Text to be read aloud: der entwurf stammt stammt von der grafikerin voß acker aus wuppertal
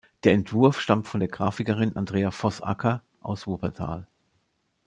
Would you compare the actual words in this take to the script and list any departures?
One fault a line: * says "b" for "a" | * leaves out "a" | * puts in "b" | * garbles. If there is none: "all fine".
* leaves out "stammt"
* puts in "andrea"